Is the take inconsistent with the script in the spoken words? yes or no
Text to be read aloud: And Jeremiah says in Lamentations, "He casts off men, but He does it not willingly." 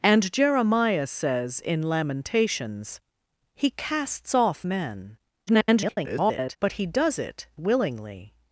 yes